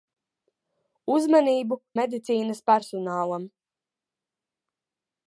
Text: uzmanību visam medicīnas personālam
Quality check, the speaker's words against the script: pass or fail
fail